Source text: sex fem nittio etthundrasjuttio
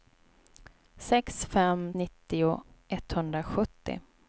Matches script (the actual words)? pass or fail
pass